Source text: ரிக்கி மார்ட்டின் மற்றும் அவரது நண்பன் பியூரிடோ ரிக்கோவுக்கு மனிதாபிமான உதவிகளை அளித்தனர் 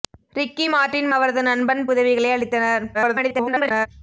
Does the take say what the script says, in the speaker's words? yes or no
no